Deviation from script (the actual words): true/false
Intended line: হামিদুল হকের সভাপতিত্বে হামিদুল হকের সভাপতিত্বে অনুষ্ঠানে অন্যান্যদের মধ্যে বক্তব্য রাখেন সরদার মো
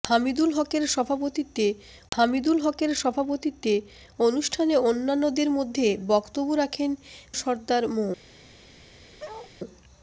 false